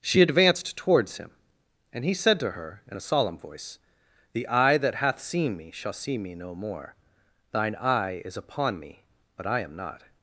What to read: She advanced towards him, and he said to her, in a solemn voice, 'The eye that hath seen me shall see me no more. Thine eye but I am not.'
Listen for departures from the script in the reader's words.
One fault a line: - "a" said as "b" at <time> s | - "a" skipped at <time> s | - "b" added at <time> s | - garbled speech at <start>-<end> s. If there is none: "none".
- "is upon me" added at 8.2 s